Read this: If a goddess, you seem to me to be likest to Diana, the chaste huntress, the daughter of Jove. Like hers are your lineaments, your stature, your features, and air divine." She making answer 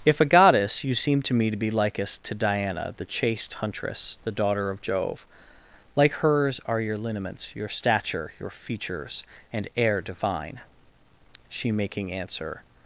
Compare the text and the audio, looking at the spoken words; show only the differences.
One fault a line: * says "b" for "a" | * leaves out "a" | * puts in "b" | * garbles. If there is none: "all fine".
all fine